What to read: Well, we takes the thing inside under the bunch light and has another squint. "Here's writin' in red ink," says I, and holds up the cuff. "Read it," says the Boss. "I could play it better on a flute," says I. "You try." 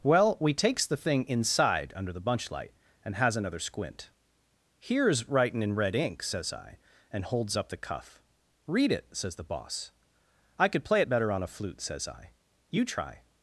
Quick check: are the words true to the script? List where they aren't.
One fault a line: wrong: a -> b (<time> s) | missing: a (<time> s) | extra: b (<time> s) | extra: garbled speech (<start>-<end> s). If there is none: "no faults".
no faults